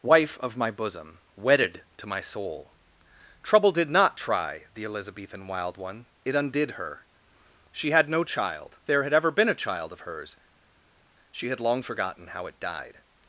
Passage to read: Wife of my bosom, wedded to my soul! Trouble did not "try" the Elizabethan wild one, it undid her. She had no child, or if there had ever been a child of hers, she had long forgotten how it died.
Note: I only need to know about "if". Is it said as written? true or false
false